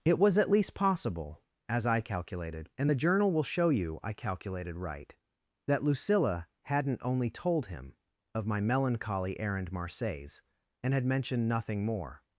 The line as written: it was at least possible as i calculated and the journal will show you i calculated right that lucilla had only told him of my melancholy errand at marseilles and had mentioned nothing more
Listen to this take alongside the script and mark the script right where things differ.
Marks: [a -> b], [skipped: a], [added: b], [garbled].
it was at least possible as i calculated and the journal will show you i calculated right that lucilla [had -> hadn't] only told him of my melancholy errand [skipped: at] marseilles and had mentioned nothing more